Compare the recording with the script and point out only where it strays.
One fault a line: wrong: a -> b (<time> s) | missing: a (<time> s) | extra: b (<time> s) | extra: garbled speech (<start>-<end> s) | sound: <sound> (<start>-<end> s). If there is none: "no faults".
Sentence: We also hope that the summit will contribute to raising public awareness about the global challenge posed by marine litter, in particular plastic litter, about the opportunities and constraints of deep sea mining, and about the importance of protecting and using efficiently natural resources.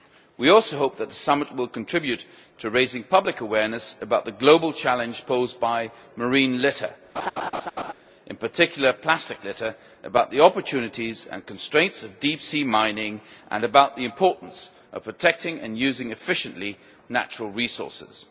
sound: laugh (7.2-7.9 s)